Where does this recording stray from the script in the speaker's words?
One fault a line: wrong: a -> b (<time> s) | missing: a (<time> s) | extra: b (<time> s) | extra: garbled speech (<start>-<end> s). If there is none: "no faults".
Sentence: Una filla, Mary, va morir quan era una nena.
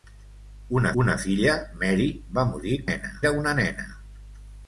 extra: una (1.0 s)
wrong: quan -> nena (2.9 s)